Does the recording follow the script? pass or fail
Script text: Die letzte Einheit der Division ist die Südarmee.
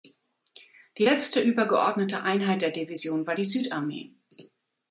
fail